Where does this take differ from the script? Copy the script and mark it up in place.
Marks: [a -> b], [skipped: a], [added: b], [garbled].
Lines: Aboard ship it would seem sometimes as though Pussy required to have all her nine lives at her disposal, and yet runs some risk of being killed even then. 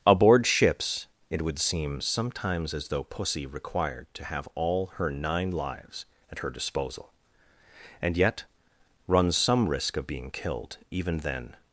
Aboard [ship -> ships] it would seem sometimes as though Pussy required to have all her nine lives at her disposal, and yet runs some risk of being killed even then.